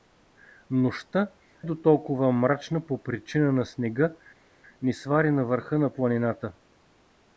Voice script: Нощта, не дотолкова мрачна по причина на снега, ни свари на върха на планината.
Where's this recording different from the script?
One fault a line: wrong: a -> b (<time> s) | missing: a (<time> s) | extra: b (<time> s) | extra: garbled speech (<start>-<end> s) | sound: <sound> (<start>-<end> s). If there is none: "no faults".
missing: не (1.3 s)